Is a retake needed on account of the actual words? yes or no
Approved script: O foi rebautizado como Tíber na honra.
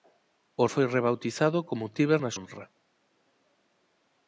no